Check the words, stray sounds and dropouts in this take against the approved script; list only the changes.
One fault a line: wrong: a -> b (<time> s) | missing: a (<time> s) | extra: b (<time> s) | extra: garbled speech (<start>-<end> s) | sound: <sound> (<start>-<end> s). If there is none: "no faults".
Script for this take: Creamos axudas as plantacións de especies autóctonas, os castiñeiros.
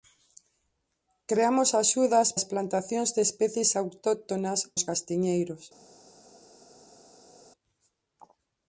no faults